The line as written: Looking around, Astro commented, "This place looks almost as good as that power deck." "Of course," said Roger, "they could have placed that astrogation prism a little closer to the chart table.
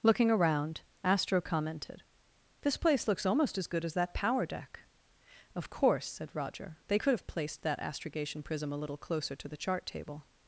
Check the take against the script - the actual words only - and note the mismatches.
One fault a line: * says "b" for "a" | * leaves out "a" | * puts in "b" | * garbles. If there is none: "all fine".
all fine